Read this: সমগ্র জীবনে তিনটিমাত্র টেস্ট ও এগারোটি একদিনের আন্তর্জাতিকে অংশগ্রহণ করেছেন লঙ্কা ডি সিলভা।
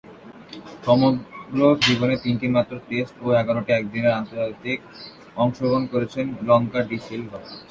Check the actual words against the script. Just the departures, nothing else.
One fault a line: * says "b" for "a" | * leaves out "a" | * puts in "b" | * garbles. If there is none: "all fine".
all fine